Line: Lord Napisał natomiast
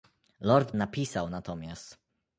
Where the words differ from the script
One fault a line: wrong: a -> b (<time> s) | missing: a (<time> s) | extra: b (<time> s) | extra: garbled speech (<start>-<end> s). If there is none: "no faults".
no faults